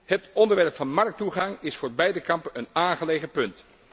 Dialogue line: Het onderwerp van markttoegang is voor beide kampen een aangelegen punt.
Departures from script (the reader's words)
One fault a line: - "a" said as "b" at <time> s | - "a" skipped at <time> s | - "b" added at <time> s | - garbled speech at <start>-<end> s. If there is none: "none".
none